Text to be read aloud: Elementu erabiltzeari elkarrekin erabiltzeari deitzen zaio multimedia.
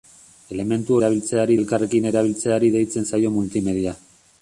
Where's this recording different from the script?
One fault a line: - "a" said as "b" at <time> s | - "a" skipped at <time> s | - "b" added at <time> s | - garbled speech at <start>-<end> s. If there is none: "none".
none